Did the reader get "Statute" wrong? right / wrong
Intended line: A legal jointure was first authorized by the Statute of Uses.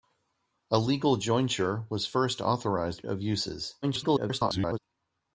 wrong